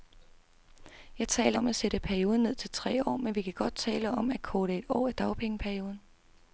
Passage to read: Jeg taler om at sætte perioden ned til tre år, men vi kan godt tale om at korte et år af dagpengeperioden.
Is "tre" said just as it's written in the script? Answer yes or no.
yes